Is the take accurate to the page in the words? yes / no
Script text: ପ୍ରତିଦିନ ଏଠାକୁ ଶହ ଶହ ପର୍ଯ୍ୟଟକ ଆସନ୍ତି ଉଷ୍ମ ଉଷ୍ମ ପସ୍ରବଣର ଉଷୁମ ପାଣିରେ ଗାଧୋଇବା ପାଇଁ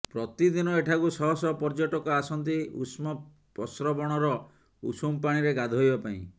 no